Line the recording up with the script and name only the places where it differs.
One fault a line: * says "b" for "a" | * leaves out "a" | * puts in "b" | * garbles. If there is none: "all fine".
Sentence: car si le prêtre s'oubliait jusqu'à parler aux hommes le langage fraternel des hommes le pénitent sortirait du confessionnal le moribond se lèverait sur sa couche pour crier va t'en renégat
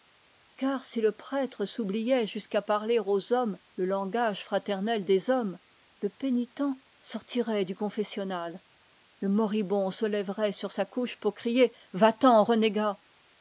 all fine